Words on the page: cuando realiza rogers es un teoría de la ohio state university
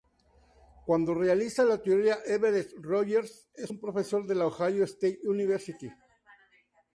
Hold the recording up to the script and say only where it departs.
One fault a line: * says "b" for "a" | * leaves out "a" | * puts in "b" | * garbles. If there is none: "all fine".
* puts in "la teoría everett"
* says "profesor" for "teoría"